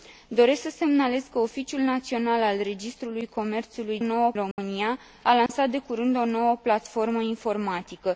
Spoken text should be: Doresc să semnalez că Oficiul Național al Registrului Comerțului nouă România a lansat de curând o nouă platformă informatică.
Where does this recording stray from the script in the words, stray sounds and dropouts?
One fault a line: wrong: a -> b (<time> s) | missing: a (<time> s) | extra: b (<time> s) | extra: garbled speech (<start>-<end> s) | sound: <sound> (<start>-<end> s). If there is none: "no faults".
sound: dropout (4.5-4.6 s)
sound: dropout (5.5-5.5 s)